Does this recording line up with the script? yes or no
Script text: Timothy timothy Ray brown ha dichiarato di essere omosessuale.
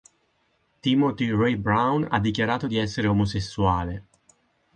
no